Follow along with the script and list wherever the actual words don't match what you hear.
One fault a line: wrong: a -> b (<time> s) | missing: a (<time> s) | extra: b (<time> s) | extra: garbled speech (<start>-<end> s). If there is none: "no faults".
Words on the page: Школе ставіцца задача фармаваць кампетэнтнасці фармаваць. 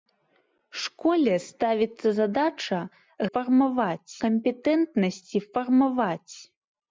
no faults